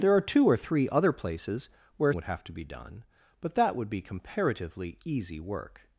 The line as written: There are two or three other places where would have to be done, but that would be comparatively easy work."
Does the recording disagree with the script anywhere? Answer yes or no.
no